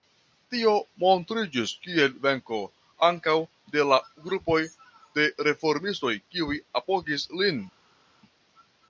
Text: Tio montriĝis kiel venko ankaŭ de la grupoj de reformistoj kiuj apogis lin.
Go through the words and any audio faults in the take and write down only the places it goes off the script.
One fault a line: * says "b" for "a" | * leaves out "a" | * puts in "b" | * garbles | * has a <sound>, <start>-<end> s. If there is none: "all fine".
all fine